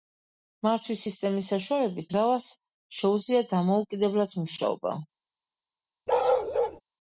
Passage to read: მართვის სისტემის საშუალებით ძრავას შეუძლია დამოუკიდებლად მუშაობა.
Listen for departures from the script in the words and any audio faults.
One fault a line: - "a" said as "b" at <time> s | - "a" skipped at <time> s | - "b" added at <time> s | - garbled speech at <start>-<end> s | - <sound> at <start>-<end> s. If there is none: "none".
- bark at 6.1-6.8 s